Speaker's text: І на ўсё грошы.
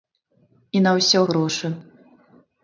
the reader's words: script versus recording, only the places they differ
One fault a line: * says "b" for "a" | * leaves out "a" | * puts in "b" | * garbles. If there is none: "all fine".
all fine